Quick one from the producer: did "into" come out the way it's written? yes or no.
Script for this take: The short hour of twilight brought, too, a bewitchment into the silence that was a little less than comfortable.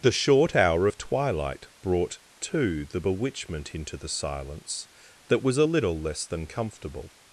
yes